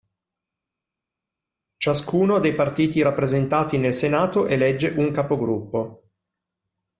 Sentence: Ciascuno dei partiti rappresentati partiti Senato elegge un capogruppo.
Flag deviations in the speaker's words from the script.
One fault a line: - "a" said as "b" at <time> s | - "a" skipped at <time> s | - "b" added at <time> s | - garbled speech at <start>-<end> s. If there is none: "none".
- "partiti" said as "nel" at 3.8 s